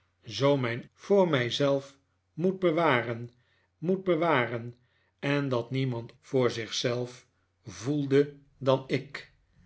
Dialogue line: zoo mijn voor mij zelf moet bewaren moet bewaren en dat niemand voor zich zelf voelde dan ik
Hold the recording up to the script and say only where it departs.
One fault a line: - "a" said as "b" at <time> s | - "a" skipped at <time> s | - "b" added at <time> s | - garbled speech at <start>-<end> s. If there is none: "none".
none